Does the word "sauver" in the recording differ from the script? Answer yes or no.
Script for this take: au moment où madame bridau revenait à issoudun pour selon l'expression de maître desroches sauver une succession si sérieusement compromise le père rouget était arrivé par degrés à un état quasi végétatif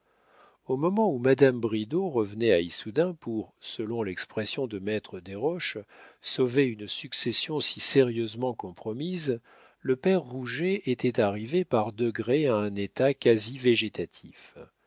no